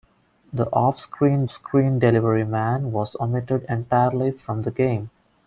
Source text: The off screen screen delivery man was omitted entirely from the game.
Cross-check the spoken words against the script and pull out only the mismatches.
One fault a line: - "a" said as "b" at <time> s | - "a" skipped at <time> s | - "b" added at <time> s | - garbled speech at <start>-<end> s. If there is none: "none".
none